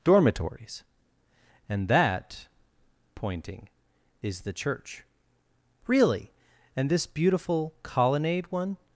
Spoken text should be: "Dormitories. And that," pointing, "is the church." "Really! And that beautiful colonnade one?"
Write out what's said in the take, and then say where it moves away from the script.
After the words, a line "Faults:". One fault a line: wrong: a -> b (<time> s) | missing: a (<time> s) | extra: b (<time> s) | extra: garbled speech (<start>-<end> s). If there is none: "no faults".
"Dormitories. And that," pointing, "is the church." "Really! And this beautiful colonnade one?"
Faults:
wrong: that -> this (6.9 s)